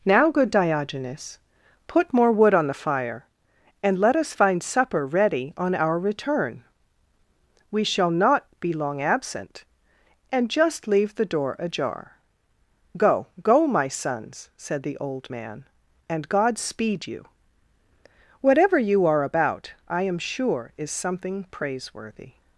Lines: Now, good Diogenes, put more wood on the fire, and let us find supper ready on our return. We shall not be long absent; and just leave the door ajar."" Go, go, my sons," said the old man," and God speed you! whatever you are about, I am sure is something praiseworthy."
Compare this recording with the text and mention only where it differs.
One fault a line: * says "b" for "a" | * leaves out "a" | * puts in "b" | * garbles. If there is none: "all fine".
all fine